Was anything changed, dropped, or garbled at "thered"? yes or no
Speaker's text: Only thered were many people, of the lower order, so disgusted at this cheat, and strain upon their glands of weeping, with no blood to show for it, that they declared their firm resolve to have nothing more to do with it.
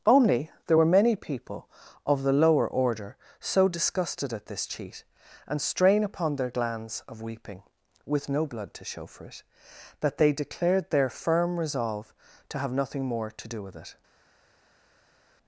yes